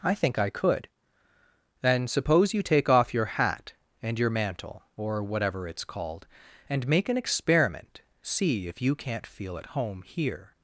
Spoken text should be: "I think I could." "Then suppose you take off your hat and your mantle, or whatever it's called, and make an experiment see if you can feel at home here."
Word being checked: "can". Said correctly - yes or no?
no